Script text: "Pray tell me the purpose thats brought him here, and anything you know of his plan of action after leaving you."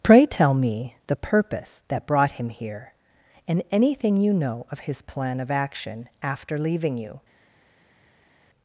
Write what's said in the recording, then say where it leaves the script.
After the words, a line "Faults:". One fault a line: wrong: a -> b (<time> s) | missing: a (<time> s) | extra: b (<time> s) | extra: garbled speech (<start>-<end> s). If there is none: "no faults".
"Pray tell me the purpose that brought him here, and anything you know of his plan of action after leaving you."
Faults:
wrong: thats -> that (1.9 s)